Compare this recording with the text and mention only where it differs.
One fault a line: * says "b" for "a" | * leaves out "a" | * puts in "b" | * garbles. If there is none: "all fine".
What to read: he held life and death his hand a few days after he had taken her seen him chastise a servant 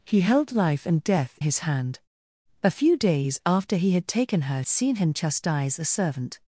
all fine